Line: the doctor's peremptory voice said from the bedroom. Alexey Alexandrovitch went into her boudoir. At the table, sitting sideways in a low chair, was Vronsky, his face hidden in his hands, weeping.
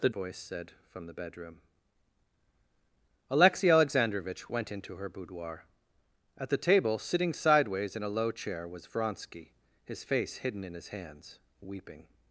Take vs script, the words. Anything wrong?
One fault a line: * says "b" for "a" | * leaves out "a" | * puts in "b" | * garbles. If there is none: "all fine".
* leaves out "doctor's peremptory"